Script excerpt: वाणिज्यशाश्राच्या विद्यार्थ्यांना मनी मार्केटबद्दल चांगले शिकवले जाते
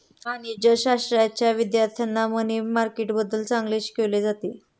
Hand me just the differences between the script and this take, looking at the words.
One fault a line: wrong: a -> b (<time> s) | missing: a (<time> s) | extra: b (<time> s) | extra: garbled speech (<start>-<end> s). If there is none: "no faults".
no faults